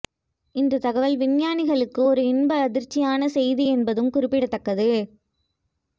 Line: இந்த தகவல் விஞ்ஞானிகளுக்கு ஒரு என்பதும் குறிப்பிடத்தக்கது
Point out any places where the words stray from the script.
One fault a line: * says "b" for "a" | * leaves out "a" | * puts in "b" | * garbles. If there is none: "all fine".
* puts in "இன்ப அதிர்ச்சியான செய்தி"